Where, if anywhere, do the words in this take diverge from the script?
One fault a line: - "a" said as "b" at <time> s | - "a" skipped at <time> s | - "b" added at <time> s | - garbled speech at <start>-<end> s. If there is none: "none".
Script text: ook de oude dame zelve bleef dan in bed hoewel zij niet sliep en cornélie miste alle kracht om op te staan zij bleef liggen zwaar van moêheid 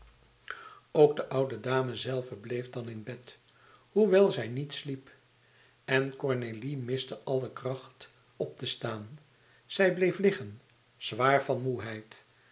- "om" skipped at 8.1 s